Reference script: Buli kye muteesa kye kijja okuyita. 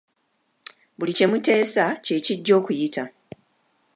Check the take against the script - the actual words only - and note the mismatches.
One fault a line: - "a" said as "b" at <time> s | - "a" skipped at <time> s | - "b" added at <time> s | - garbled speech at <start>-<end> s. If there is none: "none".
none